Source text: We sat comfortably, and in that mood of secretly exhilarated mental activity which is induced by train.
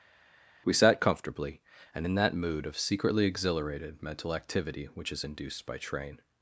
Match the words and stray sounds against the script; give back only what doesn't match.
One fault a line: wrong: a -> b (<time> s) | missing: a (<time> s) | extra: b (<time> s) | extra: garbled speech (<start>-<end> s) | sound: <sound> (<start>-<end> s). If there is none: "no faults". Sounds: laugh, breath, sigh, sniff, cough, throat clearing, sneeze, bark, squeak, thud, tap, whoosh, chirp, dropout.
no faults